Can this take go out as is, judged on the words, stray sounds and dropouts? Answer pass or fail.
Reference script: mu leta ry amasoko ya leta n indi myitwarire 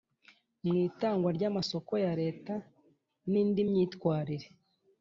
fail